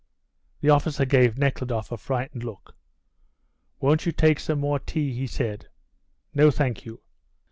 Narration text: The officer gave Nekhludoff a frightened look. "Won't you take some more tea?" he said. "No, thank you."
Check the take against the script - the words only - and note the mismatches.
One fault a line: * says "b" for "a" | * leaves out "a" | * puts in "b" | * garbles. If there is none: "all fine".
all fine